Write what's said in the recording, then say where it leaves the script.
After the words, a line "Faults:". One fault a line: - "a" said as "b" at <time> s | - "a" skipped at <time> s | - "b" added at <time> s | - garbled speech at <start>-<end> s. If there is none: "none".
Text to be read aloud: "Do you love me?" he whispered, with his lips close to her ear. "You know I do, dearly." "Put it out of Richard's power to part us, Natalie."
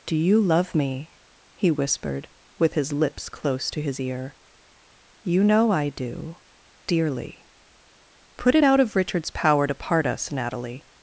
"Do you love me?" he whispered, with his lips close to his ear. "You know I do, dearly." "Put it out of Richard's power to part us, Natalie."
Faults:
- "her" said as "his" at 3.8 s